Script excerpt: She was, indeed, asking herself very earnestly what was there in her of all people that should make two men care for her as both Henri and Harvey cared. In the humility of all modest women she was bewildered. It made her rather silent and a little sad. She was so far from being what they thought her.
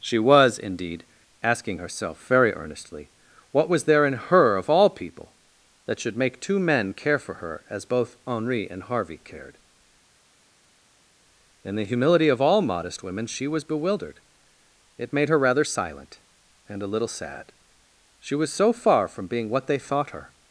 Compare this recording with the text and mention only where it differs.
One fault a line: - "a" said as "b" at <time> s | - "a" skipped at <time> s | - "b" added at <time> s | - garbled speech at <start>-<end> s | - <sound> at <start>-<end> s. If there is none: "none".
none